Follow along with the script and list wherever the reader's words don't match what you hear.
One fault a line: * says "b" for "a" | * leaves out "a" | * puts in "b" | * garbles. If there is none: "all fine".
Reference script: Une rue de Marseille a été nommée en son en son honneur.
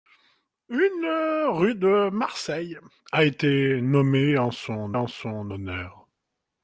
all fine